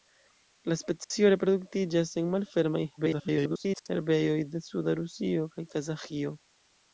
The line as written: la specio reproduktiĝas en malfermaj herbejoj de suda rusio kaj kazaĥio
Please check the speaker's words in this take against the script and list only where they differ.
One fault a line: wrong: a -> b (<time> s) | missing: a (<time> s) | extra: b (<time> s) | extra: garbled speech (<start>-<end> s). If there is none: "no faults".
extra: garbled speech (3.0-3.9 s)